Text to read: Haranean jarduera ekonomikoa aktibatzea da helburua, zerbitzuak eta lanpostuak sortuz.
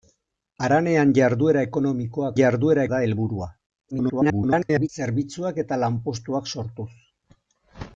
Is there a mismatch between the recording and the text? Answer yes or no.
yes